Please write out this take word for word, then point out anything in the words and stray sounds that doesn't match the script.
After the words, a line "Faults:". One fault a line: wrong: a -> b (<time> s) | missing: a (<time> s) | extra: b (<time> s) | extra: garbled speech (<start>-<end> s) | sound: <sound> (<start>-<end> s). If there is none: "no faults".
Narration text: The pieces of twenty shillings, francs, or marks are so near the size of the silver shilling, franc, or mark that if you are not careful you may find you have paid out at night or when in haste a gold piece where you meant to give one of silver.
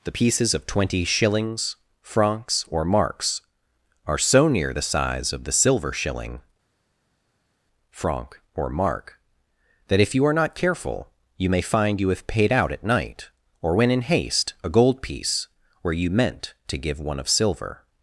The pieces of twenty shillings, francs, or marks are so near the size of the silver shilling, franc, or mark that if you are not careful you may find you have paid out at night or when in haste a gold piece where you meant to give one of silver.
Faults:
no faults